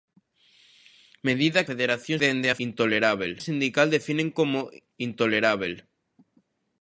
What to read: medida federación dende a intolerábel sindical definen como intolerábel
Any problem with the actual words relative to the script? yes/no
no